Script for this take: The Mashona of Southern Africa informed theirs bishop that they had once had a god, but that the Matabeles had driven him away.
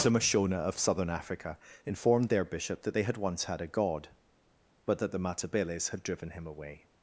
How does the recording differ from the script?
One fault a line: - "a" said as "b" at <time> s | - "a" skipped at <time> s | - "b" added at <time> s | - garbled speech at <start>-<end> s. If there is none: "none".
- "theirs" said as "their" at 2.3 s